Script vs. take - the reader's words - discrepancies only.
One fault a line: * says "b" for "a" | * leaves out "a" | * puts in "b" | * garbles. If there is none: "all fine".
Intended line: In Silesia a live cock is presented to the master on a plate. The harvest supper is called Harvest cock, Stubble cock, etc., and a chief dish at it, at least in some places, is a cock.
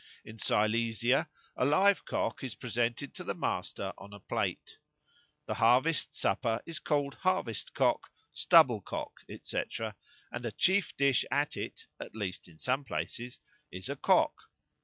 all fine